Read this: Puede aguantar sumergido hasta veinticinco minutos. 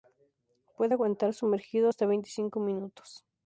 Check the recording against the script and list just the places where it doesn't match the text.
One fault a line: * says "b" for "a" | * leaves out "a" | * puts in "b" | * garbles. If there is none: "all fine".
all fine